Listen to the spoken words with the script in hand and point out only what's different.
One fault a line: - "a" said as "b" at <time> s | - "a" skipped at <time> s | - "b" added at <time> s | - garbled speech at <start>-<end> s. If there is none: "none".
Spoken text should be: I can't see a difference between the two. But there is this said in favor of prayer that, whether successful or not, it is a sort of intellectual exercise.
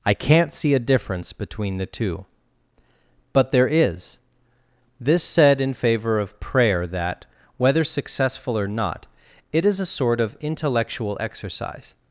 none